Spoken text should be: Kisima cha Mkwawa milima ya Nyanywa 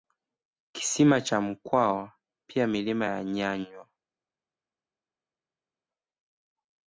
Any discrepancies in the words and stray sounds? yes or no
yes